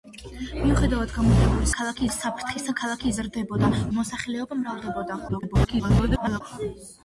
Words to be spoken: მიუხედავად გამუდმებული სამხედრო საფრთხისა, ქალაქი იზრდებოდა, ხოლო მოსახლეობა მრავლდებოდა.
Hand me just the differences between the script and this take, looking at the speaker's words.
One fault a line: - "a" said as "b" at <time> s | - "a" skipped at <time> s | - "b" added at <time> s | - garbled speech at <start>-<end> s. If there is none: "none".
- "სამხედრო" said as "ქალაქი" at 1.8 s
- "ხოლო" skipped at 3.7 s
- garbled speech at 5.3-6.4 s